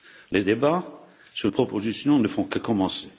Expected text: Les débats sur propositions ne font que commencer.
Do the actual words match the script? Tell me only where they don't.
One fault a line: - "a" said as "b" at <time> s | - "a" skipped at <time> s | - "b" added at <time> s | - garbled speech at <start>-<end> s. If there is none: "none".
none